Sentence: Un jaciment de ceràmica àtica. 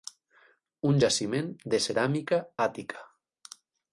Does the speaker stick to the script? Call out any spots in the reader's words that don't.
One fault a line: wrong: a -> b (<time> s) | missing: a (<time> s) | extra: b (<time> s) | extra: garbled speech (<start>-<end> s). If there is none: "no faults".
no faults